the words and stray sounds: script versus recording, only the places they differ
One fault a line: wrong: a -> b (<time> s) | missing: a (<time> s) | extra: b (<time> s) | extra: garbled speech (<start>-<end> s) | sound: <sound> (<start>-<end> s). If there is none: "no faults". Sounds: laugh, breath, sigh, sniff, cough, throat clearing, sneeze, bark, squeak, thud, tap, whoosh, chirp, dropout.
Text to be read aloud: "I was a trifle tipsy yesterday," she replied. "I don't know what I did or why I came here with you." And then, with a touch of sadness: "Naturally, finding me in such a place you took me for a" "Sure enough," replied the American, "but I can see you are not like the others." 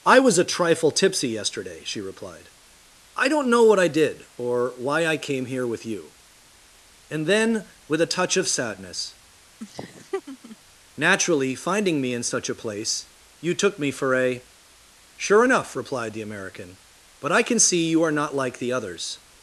sound: laugh (9.6-10.6 s)